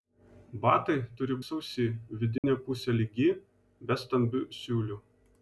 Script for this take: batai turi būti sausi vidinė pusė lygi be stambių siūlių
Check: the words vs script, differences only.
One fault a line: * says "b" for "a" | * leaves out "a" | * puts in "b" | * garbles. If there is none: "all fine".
* leaves out "būti"